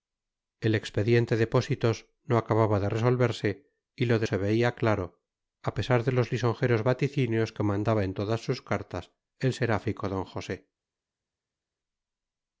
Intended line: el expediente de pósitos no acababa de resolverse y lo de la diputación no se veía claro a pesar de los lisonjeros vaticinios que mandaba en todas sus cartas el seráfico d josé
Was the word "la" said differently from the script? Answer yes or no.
yes